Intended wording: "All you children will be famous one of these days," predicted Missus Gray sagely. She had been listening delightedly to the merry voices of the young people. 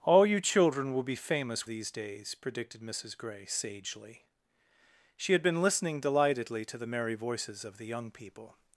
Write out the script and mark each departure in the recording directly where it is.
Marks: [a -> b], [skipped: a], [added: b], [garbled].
"All you children will be famous [skipped: one of] these days," predicted Missus Gray sagely. She had been listening delightedly to the merry voices of the young people.